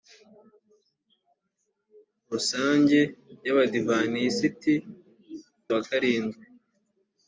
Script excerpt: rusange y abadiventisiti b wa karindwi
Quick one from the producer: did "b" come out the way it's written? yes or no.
yes